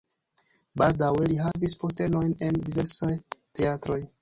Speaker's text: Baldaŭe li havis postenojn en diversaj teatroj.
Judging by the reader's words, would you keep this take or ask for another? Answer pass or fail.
pass